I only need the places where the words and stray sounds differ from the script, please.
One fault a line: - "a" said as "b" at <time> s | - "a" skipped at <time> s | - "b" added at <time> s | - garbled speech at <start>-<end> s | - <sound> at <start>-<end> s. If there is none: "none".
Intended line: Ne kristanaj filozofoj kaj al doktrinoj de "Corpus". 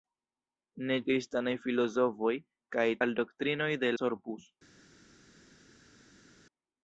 none